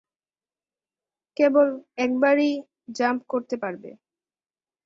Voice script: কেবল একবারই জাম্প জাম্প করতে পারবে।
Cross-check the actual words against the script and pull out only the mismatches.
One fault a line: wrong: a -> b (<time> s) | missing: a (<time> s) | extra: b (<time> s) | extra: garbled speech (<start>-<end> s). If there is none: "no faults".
missing: জাম্প (3.2 s)